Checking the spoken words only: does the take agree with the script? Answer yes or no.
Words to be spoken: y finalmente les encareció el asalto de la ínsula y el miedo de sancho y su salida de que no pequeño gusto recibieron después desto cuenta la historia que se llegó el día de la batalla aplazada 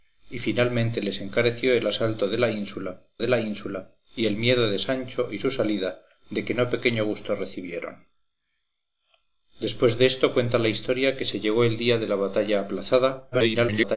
no